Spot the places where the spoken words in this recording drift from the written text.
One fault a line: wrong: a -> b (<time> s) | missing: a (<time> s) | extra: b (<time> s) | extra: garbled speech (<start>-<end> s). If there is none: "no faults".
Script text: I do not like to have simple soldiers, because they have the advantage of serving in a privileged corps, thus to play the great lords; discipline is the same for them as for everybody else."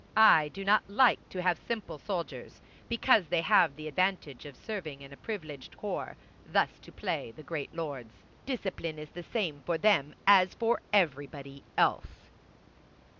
no faults